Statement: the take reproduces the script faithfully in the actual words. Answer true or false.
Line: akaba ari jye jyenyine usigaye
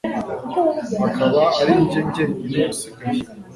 true